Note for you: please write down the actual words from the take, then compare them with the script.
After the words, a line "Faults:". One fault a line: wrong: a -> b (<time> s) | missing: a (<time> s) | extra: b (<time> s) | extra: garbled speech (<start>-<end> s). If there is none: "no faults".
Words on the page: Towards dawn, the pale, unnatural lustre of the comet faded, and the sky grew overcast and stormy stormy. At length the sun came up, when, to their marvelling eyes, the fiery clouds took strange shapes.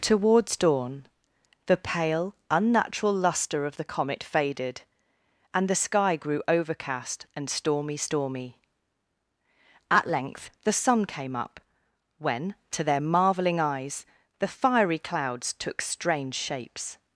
Towards dawn, the pale, unnatural lustre of the comet faded, and the sky grew overcast and stormy stormy. At length the sun came up, when, to their marvelling eyes, the fiery clouds took strange shapes.
Faults:
no faults